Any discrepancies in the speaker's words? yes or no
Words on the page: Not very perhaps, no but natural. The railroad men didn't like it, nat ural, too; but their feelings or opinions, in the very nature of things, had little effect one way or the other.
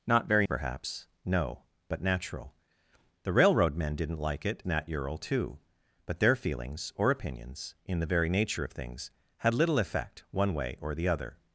no